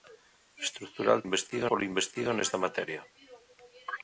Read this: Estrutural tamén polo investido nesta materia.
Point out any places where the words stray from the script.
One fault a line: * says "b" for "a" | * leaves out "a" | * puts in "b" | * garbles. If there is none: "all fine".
* says "investido" for "tamén"